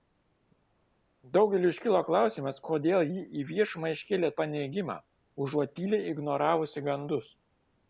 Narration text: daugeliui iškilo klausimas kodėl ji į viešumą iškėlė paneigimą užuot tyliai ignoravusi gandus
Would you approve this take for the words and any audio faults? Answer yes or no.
yes